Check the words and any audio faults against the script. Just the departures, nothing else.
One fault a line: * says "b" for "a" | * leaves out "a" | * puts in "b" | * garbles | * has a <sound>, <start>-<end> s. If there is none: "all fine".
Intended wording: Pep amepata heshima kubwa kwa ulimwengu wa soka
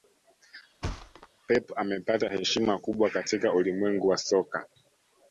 * has a thud, 0.8-1.3 s
* says "katika" for "kwa"